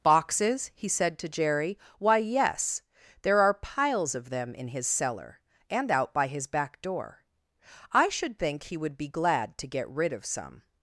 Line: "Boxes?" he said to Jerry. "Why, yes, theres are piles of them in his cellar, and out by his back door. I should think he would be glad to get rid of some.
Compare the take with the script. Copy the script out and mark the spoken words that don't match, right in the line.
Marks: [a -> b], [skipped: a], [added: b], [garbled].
"Boxes?" he said to Jerry. "Why, yes, [theres -> there] are piles of them in his cellar, and out by his back door. I should think he would be glad to get rid of some.